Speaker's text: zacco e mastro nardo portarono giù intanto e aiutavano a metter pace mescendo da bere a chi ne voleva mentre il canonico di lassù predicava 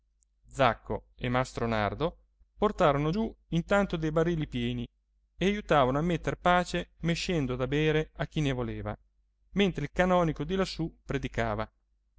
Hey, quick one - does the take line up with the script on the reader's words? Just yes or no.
no